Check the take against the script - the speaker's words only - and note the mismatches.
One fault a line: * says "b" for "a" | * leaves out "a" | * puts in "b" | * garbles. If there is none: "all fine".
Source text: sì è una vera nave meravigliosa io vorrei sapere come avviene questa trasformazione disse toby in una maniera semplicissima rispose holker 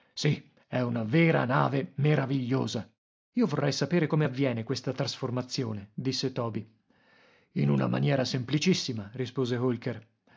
all fine